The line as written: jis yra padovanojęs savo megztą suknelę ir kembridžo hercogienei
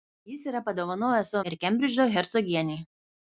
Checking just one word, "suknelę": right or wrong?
wrong